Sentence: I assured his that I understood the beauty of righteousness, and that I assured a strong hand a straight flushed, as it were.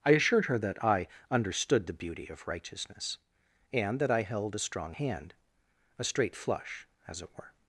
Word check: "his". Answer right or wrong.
wrong